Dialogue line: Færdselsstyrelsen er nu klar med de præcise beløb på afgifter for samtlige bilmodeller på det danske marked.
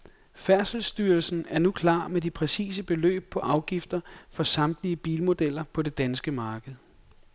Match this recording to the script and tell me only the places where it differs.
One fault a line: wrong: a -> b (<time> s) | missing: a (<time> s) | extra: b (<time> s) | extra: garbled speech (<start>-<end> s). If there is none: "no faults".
no faults